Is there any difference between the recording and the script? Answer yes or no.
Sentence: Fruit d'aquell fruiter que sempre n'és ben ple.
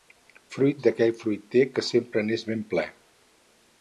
no